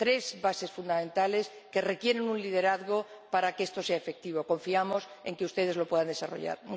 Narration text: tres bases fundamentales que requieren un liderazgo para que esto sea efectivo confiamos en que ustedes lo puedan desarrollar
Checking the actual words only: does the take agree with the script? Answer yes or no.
yes